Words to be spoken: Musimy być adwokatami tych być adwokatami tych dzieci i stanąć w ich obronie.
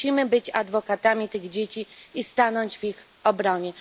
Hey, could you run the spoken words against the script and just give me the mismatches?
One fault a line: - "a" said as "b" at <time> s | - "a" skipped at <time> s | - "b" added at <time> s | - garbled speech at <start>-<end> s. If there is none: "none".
- "być adwokatami tych" skipped at 1.5 s